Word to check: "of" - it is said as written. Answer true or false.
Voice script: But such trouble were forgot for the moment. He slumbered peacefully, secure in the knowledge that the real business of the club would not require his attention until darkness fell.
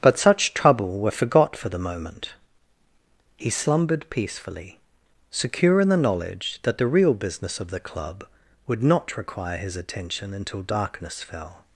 true